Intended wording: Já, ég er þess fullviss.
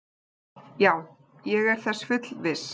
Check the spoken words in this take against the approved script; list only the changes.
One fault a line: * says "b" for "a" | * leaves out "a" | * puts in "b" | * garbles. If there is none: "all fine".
all fine